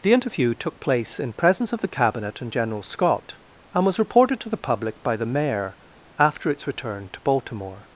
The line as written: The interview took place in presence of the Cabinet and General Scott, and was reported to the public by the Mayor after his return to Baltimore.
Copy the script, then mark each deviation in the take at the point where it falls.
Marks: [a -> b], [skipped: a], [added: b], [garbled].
The interview took place in presence of the Cabinet and General Scott, and was reported to the public by the Mayor after [his -> its] return to Baltimore.